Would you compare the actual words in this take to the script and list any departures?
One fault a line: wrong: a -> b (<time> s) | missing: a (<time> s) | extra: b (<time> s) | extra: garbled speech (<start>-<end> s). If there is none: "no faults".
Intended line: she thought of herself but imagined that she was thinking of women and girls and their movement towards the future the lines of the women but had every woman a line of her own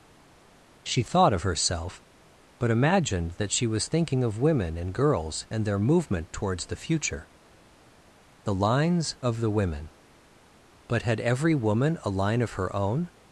no faults